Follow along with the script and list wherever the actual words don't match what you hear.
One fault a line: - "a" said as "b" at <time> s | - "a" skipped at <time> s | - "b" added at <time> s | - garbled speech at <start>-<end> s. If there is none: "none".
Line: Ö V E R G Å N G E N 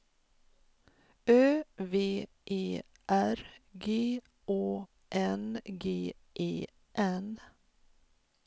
none